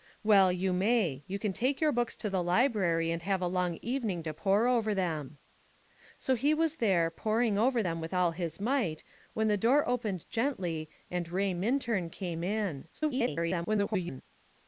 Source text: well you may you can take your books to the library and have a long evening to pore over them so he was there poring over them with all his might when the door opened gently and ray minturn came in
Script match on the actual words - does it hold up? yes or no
no